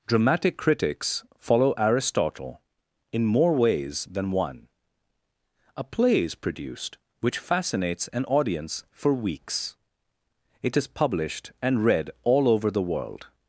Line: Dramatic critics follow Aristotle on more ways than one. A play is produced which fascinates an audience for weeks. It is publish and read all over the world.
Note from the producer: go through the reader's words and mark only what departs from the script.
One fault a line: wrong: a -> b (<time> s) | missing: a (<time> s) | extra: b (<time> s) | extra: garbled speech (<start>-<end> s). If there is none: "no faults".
wrong: on -> in (3.1 s)
wrong: publish -> published (10.9 s)